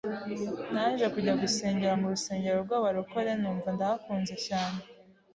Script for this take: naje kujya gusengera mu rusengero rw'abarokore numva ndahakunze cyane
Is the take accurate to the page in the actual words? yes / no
yes